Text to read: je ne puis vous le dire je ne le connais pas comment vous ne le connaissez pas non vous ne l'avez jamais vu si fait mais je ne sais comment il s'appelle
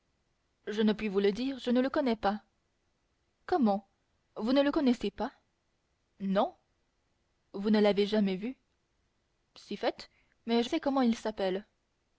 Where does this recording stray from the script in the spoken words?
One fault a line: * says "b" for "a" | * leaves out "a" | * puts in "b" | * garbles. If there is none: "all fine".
* leaves out "ne"